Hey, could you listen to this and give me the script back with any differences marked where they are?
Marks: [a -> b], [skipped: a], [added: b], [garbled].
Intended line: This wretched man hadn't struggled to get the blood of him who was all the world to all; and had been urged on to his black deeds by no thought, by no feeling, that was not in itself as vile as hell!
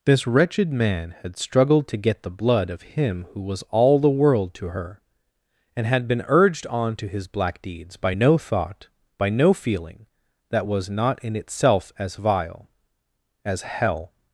This wretched man [hadn't -> had] struggled to get the blood of him who was all the world to [all; -> her] and had been urged on to his black deeds by no thought, by no feeling, that was not in itself as vile as hell!